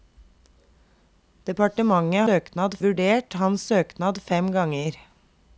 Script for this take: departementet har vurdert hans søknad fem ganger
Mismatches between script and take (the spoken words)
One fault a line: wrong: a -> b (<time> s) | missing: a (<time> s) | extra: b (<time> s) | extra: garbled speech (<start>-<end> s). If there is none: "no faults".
wrong: har -> søknad (2.3 s)